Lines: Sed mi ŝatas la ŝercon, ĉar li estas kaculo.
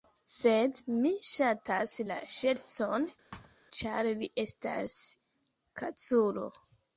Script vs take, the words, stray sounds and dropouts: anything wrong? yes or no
yes